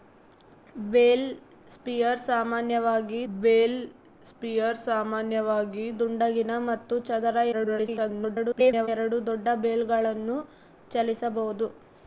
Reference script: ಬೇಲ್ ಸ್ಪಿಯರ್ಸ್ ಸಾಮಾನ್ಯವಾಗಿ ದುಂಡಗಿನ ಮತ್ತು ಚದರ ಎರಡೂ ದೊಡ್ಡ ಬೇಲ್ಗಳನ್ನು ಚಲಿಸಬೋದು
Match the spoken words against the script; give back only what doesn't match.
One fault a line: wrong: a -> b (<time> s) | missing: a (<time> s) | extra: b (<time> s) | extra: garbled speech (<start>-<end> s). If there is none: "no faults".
extra: ಬೇಲ್ ಸ್ಪಿಯರ್ಸ್ ಸಾಮಾನ್ಯವಾಗಿ (3.3 s)
extra: garbled speech (7.5-8.9 s)